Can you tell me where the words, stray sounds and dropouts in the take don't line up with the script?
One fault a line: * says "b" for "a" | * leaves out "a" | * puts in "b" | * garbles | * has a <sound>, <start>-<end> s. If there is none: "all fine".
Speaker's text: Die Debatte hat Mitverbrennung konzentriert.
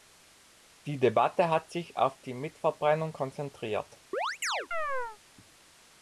* puts in "sich auf die"
* has a chirp, 4.1-5.2 s